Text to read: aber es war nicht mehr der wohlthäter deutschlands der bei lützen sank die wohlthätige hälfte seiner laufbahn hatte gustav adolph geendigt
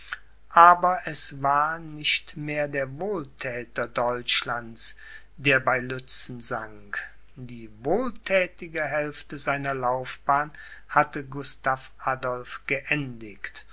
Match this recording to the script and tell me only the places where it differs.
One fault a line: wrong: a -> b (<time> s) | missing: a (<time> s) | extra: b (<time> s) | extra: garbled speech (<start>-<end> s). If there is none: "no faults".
no faults